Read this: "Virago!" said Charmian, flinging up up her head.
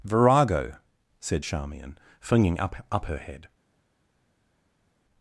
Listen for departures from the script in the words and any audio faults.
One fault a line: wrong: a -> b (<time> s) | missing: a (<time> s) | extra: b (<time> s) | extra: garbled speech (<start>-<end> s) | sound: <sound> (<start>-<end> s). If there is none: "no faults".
no faults